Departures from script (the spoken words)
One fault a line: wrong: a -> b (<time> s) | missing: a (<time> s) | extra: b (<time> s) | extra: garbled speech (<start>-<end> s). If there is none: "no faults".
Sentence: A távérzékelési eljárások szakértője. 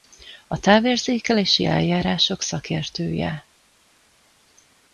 no faults